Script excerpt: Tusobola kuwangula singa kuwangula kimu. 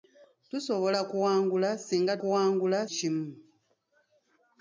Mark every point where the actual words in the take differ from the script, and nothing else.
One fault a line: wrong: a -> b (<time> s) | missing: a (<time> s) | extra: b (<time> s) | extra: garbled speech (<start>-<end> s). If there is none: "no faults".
no faults